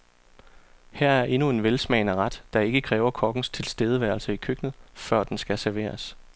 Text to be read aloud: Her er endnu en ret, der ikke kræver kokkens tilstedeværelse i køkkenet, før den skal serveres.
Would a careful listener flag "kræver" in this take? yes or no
no